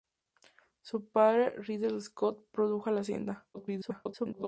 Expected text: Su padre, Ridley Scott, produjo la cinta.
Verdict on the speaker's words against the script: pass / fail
fail